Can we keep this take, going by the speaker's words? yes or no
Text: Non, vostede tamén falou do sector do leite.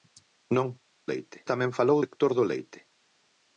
no